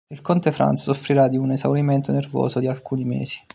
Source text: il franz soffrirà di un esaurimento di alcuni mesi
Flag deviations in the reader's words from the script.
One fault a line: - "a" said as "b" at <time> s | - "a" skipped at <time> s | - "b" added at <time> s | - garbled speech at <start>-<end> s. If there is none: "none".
- "conte" added at 0.2 s
- "nervoso" added at 2.1 s